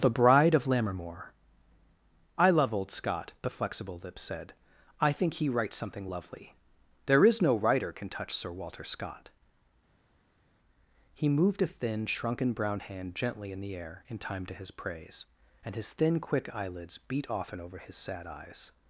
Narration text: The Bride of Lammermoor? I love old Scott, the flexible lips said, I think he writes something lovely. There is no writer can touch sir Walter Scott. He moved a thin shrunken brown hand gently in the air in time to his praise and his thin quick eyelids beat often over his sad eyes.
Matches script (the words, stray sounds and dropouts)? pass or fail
pass